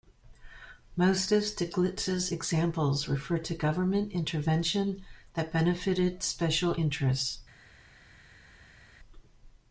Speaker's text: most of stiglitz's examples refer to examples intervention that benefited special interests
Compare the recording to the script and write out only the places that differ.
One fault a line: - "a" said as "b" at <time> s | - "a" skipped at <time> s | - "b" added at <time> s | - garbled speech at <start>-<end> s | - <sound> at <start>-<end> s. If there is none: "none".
- "examples" said as "government" at 3.6 s